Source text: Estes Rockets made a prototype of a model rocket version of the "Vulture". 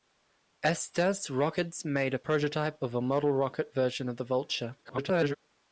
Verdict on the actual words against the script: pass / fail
fail